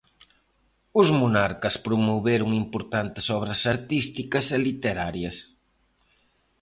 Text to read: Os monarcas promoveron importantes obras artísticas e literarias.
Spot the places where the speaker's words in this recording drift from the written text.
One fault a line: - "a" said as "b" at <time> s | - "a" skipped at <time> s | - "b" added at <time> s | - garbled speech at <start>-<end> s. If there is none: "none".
none